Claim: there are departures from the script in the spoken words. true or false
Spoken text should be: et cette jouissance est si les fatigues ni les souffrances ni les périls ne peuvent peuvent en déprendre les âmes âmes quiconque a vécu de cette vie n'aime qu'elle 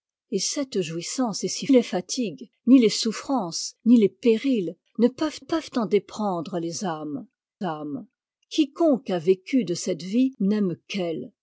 false